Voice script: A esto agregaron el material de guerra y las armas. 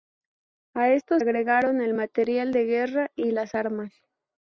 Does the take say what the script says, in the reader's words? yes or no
yes